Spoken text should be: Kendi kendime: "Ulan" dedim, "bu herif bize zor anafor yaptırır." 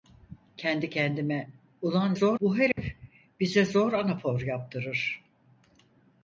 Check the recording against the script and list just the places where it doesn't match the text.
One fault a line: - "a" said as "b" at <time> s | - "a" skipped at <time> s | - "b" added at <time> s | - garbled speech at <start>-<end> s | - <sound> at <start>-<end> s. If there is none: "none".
- "dedim" said as "zor" at 2.1 s
- dropout at 2.7-2.8 s